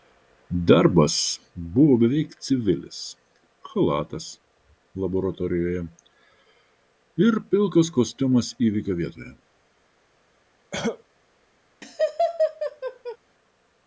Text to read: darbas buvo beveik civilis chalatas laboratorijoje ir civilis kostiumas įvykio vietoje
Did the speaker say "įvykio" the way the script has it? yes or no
yes